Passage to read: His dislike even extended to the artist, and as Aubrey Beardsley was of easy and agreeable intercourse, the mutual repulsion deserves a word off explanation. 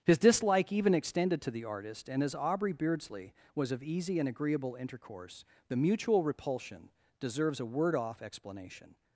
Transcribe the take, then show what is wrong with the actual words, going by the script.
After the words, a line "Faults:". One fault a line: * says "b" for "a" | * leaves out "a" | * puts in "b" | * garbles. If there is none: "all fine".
His dislike even extended to the artist, and as Aubrey Beardsley was of easy and agreeable intercourse, the mutual repulsion deserves a word off explanation.
Faults:
all fine